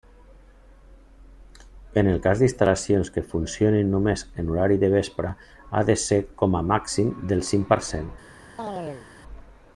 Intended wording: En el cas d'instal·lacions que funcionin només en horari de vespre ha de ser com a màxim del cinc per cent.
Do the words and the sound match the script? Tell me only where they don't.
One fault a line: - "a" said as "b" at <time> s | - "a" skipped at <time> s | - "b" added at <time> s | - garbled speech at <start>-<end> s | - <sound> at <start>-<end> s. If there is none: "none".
- chirp at 8.6-9.1 s